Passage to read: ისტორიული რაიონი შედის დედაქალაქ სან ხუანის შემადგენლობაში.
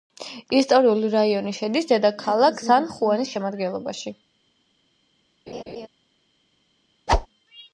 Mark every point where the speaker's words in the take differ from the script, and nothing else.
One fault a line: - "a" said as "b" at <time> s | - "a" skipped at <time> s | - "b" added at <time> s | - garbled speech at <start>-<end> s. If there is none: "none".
none